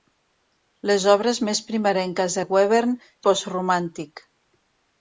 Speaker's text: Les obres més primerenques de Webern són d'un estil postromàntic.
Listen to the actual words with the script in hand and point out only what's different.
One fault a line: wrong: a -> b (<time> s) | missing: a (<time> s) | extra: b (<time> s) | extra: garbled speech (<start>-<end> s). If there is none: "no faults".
missing: són d'un estil (3.0 s)